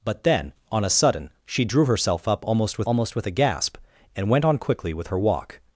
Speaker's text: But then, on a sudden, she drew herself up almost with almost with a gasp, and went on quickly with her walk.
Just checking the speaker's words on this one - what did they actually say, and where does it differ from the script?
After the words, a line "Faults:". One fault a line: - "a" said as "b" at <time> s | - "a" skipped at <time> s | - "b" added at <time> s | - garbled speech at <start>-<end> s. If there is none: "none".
But then, on a sudden, she drew herself up almost with almost with a gasp, and went on quickly with her walk.
Faults:
none